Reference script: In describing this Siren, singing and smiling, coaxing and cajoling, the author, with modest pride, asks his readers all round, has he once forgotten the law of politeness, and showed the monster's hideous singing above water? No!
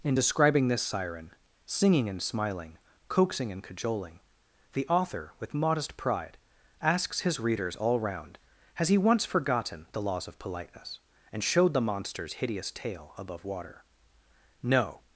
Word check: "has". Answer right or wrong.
right